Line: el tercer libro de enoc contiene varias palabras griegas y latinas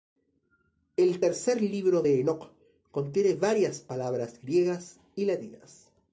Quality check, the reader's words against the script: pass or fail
pass